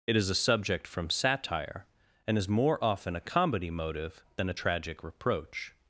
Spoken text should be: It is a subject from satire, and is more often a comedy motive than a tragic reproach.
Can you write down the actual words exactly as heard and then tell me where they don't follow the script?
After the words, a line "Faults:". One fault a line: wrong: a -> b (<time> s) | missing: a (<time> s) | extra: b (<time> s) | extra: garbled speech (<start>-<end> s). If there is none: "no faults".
It is a subject from satire, and is more often a comedy motive than a tragic reproach.
Faults:
no faults